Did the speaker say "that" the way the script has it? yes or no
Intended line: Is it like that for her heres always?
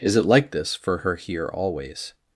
no